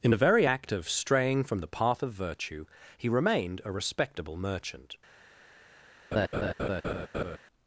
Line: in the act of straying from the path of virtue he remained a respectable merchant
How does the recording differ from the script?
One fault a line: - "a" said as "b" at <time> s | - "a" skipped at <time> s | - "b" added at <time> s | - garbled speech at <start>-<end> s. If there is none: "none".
- "very" added at 0.2 s